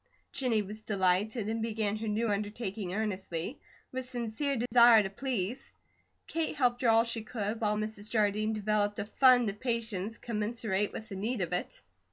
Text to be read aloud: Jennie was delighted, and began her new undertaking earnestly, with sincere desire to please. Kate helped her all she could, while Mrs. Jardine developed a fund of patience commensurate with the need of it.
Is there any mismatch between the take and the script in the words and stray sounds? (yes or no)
yes